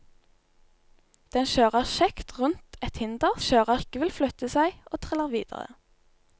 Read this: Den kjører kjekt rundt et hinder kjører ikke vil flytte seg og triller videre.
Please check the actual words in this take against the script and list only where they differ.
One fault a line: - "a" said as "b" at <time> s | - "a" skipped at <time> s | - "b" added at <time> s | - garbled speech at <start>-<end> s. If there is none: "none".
none